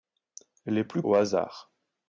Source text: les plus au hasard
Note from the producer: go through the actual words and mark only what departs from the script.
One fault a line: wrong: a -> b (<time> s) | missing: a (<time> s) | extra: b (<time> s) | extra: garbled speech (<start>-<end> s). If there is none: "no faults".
no faults